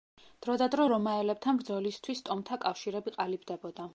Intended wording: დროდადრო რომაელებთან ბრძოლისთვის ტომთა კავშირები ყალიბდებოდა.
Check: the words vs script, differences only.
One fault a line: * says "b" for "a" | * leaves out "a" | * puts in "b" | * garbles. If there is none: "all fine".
all fine